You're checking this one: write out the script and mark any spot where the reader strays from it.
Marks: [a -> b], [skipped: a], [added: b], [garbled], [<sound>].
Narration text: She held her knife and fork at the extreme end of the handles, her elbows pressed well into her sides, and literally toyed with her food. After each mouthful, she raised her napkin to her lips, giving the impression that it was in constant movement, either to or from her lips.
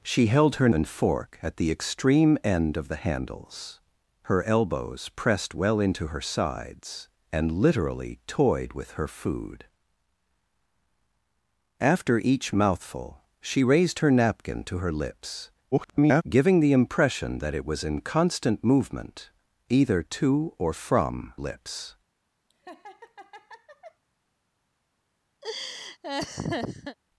She held her [skipped: knife] and fork at the extreme end of the handles, her elbows pressed well into her sides, and literally toyed with her food. After each mouthful, she raised her napkin to her lips, [garbled] giving the impression that it was in constant movement, either to or from [skipped: her] lips. [laugh] [laugh]